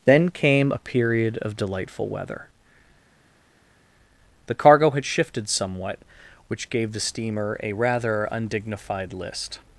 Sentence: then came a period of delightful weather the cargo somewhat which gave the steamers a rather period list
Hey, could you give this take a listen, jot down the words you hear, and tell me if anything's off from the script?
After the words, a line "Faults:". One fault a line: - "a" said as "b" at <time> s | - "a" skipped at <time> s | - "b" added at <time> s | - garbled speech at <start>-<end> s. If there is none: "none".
then came a period of delightful weather the cargo had shifted somewhat which gave the steamer a rather undignified list
Faults:
- "had shifted" added at 4.9 s
- "steamers" said as "steamer" at 7.0 s
- "period" said as "undignified" at 8.3 s